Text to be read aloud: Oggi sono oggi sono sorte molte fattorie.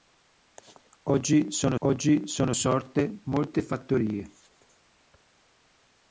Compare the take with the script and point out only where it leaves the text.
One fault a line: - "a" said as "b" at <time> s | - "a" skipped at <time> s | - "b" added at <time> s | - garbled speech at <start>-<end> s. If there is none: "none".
none